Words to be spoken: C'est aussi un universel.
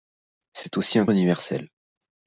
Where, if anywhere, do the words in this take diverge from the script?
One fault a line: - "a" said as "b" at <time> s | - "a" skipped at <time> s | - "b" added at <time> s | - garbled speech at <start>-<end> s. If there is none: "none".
none